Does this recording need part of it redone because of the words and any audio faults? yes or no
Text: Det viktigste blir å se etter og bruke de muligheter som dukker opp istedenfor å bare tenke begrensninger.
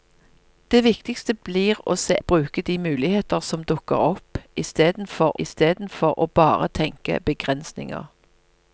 yes